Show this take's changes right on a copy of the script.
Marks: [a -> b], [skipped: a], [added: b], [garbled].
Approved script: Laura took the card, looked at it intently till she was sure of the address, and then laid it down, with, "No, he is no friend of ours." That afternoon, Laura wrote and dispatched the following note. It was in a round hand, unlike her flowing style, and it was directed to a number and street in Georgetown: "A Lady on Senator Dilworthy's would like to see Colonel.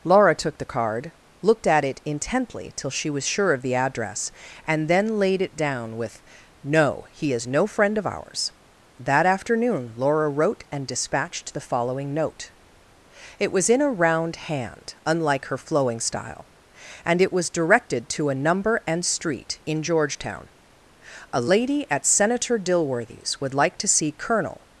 Laura took the card, looked at it intently till she was sure of the address, and then laid it down, with, "No, he is no friend of ours." That afternoon, Laura wrote and dispatched the following note. It was in a round hand, unlike her flowing style, and it was directed to a number and street in Georgetown: "A Lady [on -> at] Senator Dilworthy's would like to see Colonel.